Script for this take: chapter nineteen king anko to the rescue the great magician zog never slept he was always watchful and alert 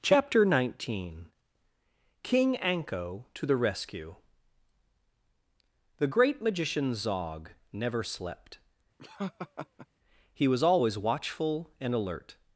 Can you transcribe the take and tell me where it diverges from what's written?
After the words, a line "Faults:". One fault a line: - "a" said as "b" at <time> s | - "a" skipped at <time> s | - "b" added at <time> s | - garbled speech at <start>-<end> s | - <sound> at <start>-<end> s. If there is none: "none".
chapter nineteen king anko to the rescue the great magician zog never slept he was always watchful and alert
Faults:
- laugh at 9.0-9.9 s